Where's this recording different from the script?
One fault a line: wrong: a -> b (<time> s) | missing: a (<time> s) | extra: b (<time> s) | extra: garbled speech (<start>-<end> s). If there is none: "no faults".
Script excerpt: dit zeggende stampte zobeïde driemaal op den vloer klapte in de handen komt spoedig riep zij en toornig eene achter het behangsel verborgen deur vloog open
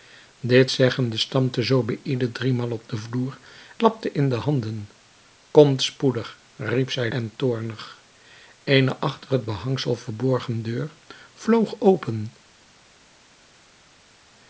no faults